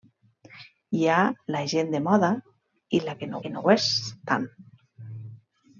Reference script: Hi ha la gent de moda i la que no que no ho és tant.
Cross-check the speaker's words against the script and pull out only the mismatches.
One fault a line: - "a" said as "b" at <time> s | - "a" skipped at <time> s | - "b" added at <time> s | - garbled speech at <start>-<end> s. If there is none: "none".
none